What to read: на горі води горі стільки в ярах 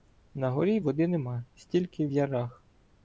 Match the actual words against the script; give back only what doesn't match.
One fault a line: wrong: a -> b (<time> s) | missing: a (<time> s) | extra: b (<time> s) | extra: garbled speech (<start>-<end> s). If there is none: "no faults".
wrong: горі -> нема (1.1 s)